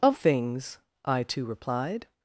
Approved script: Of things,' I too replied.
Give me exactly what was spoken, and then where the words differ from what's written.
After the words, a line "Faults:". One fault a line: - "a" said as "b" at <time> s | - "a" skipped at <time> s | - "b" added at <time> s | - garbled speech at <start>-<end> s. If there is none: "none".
Of things,' I too replied.
Faults:
none